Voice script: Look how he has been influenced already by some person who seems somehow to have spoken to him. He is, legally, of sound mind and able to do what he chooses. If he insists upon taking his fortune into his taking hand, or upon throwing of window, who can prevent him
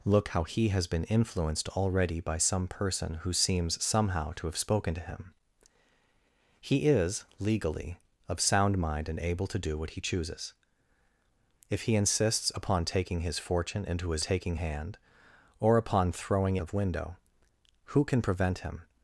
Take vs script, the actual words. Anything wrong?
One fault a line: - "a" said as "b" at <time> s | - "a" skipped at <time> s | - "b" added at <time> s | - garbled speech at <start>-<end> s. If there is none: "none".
none